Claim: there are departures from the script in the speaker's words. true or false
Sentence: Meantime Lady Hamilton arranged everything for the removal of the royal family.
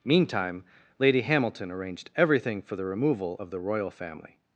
false